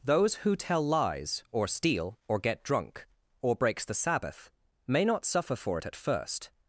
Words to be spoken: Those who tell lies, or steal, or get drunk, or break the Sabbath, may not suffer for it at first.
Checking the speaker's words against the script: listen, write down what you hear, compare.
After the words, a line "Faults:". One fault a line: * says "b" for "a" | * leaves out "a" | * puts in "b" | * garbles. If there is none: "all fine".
Those who tell lies, or steal, or get drunk, or breaks the Sabbath, may not suffer for it at first.
Faults:
* says "breaks" for "break"